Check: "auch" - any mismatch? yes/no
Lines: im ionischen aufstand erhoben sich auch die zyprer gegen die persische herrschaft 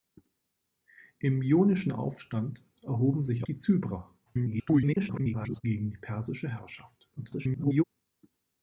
yes